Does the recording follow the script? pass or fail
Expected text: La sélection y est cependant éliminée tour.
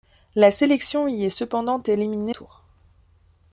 pass